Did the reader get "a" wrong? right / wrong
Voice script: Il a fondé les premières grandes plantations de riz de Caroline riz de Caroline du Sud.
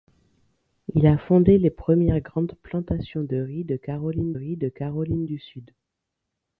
right